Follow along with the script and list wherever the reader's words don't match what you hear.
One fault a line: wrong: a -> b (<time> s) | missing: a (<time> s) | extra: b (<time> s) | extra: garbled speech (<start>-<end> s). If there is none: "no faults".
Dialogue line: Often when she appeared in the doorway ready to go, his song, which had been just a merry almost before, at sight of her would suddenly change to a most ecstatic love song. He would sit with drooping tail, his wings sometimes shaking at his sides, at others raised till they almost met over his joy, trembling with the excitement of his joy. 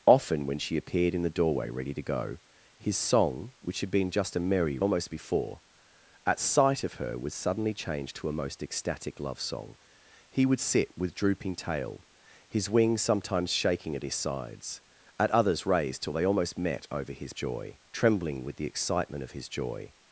no faults